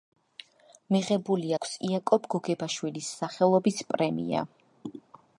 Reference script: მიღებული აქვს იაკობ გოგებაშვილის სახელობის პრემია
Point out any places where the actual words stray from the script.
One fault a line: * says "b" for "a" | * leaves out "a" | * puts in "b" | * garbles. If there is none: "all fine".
all fine